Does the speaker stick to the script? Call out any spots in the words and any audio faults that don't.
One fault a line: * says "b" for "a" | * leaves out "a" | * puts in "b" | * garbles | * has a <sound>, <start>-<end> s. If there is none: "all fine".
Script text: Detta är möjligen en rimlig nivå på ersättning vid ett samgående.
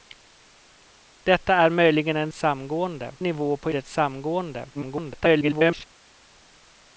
* says "samgående" for "rimlig"
* leaves out "ersättning vid"
* garbles